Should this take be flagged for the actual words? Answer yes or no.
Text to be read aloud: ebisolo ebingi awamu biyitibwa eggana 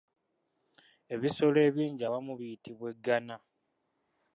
no